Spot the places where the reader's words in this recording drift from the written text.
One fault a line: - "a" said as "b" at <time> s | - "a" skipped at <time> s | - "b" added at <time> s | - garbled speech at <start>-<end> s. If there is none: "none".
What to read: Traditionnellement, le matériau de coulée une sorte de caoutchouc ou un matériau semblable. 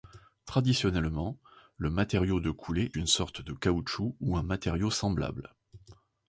none